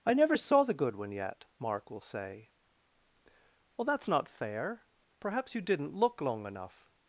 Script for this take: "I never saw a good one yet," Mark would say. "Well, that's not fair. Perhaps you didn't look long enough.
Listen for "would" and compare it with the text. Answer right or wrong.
wrong